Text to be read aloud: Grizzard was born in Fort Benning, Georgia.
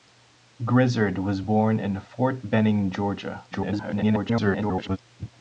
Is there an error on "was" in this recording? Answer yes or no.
no